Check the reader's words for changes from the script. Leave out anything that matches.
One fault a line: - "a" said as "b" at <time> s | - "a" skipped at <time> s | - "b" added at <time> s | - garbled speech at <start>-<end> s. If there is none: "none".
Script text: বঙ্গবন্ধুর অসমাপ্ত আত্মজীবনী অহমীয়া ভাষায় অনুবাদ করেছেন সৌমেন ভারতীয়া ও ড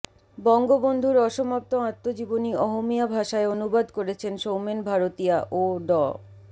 none